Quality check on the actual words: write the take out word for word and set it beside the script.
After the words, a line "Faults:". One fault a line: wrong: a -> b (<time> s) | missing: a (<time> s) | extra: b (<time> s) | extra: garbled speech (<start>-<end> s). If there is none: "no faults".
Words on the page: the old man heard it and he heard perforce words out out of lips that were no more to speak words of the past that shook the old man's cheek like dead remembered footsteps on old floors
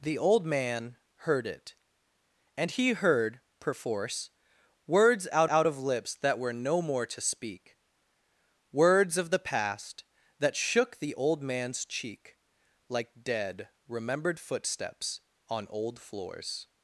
the old man heard it and he heard perforce words out out of lips that were no more to speak words of the past that shook the old man's cheek like dead remembered footsteps on old floors
Faults:
no faults